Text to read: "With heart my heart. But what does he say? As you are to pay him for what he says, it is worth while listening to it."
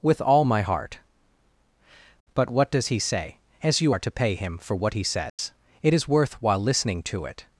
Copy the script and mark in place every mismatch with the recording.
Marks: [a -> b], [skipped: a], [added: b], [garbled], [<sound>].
"With [heart -> all] my heart. But what does he say? As you are to pay him for what he says, [dropout] it is worth while listening to it."